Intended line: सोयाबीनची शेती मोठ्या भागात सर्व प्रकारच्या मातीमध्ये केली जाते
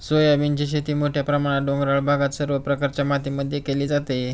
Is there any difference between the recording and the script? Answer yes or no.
yes